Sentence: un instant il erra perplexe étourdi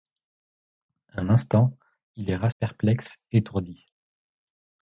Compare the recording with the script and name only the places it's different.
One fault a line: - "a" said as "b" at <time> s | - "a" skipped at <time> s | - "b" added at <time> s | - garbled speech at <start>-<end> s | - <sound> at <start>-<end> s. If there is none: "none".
none